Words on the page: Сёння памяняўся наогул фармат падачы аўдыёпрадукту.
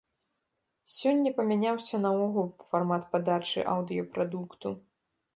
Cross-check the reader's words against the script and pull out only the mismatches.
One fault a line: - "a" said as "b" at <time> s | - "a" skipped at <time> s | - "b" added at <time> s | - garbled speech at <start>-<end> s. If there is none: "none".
none